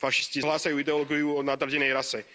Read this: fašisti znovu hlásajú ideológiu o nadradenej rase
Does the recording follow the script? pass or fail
fail